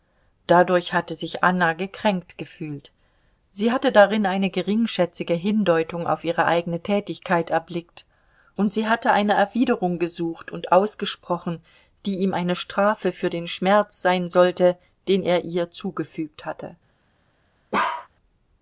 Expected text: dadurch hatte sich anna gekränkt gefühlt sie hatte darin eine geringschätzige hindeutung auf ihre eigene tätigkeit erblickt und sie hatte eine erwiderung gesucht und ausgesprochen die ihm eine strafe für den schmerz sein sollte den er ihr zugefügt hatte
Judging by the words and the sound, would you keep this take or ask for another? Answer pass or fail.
fail